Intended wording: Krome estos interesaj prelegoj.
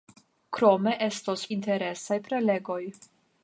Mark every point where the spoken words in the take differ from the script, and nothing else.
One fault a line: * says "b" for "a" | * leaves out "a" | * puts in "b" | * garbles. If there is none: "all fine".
all fine